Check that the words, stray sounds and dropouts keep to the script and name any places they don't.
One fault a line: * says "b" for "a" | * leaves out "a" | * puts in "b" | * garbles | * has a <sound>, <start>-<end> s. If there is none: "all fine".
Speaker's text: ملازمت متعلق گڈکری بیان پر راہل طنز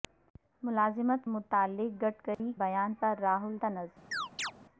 * has a dropout, 2.3-2.4 s
* has a chirp, 4.1-4.5 s